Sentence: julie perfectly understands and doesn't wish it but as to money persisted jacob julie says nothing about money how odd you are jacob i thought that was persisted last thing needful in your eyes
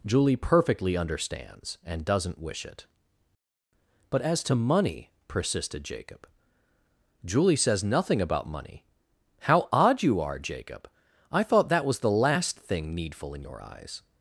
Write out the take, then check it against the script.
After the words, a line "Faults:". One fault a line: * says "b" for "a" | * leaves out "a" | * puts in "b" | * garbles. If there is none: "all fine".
julie perfectly understands and doesn't wish it but as to money persisted jacob julie says nothing about money how odd you are jacob i thought that was the last thing needful in your eyes
Faults:
* says "the" for "persisted"